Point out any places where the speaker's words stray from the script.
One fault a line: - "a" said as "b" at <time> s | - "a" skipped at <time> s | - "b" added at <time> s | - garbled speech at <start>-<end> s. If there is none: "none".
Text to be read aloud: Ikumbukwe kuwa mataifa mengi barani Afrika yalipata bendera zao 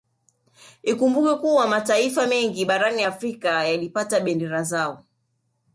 none